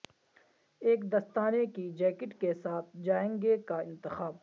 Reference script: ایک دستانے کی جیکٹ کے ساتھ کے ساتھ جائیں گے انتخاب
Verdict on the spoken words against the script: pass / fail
fail